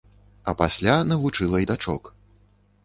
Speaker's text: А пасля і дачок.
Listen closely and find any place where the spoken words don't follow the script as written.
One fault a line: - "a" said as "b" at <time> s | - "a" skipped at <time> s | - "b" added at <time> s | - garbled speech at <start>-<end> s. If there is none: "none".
- "навучыла" added at 1.1 s